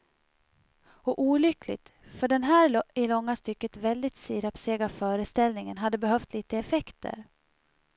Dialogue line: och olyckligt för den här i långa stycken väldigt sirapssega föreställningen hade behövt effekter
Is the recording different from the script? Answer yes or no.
yes